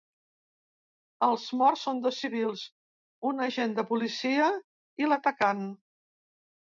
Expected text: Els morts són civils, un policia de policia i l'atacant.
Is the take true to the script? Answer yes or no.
no